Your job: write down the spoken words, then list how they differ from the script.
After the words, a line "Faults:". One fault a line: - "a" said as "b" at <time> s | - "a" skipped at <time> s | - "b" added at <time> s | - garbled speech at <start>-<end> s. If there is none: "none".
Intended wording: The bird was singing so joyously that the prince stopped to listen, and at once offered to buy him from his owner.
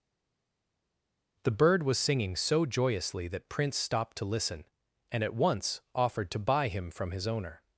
The bird was singing so joyously that prince stopped to listen, and at once offered to buy him from his owner.
Faults:
- "the" skipped at 3.5 s